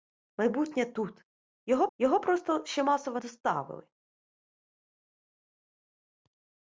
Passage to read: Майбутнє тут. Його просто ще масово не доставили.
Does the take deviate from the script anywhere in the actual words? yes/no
yes